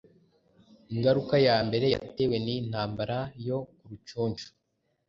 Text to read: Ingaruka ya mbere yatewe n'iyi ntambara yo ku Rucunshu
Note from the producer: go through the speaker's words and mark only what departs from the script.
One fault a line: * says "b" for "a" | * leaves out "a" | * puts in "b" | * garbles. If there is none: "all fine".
all fine